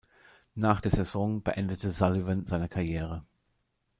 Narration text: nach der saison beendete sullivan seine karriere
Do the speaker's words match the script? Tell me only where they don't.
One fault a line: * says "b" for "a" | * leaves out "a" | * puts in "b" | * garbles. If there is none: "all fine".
all fine